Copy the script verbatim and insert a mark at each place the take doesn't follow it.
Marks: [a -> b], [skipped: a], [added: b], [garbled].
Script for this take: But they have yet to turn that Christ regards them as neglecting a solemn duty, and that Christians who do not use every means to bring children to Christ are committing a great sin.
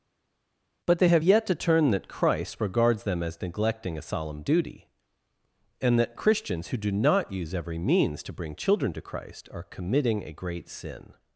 But they have yet to turn that Christ regards them as neglecting a solemn duty, and that Christians who do not use every means to bring children to Christ are committing a great sin.